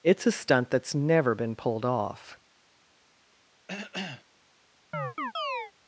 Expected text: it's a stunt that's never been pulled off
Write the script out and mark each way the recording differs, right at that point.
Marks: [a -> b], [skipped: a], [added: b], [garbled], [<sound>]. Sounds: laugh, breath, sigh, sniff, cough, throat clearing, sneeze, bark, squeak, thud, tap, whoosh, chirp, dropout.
it's a stunt that's never been pulled off [cough] [chirp]